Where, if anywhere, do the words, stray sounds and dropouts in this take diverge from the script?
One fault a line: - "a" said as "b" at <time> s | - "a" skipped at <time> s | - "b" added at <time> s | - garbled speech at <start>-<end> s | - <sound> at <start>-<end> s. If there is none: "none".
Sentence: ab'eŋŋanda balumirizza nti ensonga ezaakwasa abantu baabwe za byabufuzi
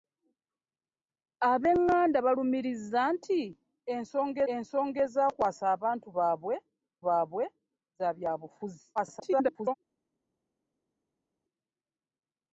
- "ensonga" added at 4.5 s
- "baabwe" added at 7.1 s
- garbled speech at 9.0-9.7 s